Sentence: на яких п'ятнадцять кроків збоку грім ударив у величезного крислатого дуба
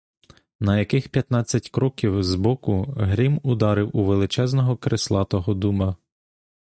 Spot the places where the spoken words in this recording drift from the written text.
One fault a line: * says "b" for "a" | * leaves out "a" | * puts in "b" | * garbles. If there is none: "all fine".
all fine